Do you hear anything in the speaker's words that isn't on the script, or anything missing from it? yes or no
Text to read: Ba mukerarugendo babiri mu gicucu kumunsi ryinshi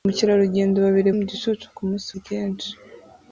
no